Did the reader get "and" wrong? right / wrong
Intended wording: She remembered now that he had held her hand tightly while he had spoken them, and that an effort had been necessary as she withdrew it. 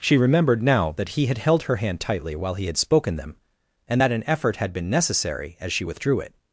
right